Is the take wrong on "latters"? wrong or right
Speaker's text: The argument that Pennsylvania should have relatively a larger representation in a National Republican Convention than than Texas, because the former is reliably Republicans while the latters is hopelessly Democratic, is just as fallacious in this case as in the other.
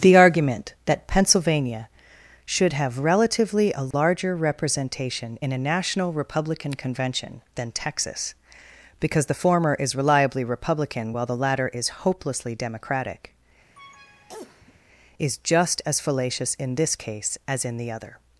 wrong